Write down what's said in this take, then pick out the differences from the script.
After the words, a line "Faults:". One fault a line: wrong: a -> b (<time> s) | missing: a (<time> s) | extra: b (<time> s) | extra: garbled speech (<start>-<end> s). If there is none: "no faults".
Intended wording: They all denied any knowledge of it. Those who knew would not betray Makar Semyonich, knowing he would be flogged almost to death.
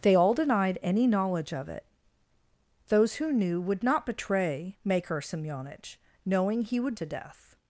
They all denied any knowledge of it. Those who knew would not betray Makar Semyonich, knowing he would to death.
Faults:
missing: be flogged almost (7.0 s)